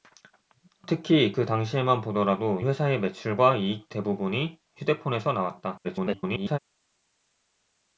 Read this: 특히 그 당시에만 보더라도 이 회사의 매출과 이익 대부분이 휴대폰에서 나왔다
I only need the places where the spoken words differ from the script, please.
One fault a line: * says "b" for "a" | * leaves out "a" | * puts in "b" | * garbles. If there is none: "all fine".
* leaves out "이"
* garbles